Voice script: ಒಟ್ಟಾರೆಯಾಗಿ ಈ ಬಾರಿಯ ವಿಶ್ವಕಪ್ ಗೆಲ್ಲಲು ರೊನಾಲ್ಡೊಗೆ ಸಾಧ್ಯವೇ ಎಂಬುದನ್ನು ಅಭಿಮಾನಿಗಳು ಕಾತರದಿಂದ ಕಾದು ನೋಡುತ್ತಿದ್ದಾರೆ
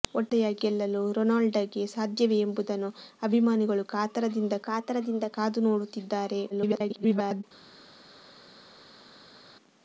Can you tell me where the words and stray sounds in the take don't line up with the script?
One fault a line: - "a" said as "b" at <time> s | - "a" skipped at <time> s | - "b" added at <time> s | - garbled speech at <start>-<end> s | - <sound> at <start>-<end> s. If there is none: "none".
- "ಈ ಬಾರಿಯ ವಿಶ್ವಕಪ್" skipped at 0.6 s
- "ಕಾತರದಿಂದ" added at 4.7 s
- garbled speech at 6.5-7.4 s